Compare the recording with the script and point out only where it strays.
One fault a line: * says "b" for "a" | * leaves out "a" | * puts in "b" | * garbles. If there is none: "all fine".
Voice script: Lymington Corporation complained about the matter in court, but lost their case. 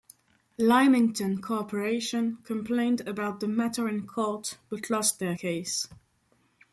all fine